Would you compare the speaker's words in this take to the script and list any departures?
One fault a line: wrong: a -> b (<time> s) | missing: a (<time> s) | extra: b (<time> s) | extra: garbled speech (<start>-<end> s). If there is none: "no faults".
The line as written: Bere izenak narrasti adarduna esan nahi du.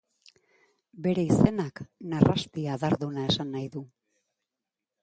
no faults